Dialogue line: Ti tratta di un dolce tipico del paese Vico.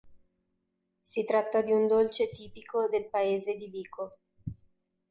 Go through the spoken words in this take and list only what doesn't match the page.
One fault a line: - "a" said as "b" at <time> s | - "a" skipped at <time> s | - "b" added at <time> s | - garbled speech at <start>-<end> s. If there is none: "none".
- "Ti" said as "Si" at 1.0 s
- "di" added at 3.6 s